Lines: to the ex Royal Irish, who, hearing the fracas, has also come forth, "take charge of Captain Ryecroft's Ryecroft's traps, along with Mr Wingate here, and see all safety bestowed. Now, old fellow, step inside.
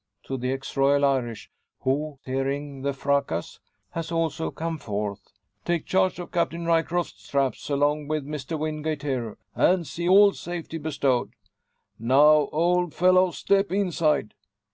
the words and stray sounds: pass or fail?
fail